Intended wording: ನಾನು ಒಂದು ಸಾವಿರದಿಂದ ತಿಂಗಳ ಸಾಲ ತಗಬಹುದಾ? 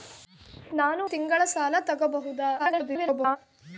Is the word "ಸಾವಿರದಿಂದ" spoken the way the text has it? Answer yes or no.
no